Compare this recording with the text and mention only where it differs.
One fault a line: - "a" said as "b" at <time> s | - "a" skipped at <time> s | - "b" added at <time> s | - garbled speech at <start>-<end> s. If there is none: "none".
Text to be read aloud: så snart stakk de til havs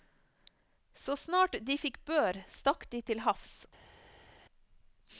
- "de fikk bør" added at 1.7 s